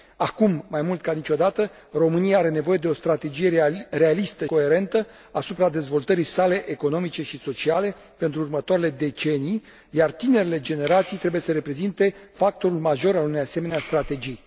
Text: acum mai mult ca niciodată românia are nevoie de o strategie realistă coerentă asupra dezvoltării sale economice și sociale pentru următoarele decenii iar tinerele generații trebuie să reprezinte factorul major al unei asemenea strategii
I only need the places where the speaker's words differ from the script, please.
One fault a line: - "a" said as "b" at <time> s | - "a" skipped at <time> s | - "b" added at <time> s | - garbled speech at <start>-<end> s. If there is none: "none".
none